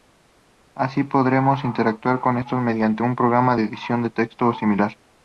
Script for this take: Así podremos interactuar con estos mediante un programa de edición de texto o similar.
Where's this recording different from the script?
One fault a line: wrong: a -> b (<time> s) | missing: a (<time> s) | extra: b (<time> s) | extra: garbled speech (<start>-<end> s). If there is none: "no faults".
no faults